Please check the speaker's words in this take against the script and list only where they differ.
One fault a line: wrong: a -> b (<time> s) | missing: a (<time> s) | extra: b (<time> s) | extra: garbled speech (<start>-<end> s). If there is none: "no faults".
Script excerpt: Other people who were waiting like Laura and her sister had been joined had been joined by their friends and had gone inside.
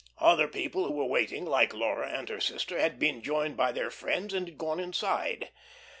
missing: had been joined (3.6 s)